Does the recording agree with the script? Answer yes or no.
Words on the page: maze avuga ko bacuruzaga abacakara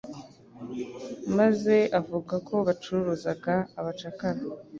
yes